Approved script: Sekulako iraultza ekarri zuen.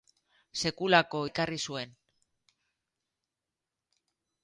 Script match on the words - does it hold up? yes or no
no